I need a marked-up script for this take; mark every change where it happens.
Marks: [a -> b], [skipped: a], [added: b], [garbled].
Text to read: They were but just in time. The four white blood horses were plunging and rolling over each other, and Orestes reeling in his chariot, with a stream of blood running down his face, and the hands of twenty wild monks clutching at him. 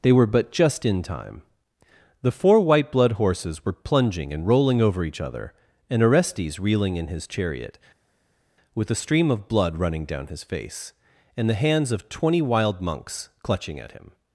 They were but just in time. The four white blood horses were plunging and rolling over each other, and Orestes reeling in his chariot, with a stream of blood running down his face, and the hands of twenty wild monks clutching at him.